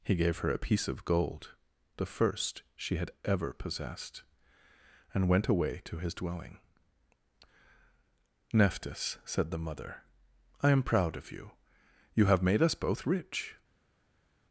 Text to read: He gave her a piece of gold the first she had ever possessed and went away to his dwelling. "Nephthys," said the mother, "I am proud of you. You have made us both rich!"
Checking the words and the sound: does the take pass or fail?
pass